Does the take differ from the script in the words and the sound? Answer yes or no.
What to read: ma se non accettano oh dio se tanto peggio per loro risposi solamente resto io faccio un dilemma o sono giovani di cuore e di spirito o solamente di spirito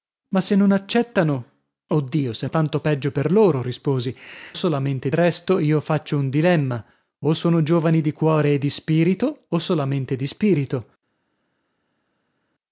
no